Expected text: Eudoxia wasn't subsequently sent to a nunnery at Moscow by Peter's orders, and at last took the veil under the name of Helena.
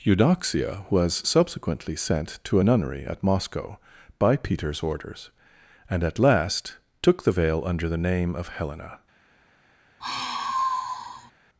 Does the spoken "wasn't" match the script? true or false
false